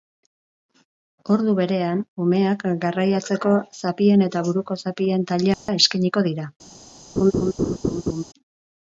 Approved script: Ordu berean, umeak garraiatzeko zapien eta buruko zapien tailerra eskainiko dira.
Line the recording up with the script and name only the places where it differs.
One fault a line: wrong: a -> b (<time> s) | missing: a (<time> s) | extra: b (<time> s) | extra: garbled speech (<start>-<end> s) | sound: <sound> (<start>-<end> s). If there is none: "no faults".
sound: dropout (5.5-5.7 s)
sound: laugh (7.2-8.2 s)